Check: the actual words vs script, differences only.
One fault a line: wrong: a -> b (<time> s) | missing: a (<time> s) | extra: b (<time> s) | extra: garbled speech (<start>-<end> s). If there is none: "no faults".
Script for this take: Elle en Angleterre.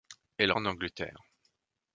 no faults